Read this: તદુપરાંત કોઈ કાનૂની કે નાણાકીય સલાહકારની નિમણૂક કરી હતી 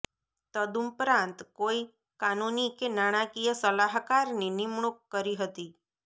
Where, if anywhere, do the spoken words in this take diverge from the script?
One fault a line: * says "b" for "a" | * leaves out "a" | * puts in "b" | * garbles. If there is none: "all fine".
all fine